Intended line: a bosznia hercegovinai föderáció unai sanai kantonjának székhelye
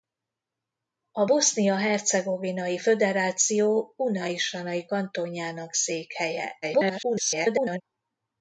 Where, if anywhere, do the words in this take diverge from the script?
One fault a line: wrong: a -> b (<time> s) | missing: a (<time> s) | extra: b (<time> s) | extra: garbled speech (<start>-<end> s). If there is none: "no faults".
extra: garbled speech (6.6-7.8 s)